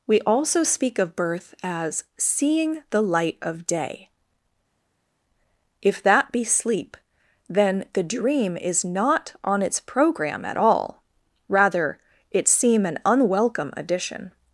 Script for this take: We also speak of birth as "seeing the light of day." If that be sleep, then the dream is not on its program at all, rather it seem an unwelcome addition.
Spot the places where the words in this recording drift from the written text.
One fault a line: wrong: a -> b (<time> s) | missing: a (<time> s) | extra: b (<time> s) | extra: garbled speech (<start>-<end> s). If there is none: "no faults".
no faults